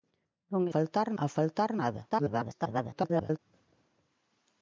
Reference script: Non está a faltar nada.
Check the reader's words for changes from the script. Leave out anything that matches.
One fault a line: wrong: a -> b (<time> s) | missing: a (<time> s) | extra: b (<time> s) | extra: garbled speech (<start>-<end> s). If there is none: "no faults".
wrong: está -> faltar (0.7 s)
extra: garbled speech (2.1-3.4 s)